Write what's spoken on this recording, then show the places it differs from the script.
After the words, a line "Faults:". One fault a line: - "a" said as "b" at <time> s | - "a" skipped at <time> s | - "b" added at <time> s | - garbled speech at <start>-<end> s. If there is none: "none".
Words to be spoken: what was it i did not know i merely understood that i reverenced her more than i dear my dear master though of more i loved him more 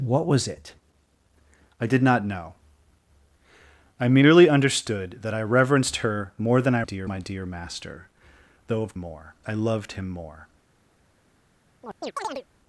what was it i did not know i merely understood that i reverenced her more than i dear my dear master though of more i loved him more
Faults:
none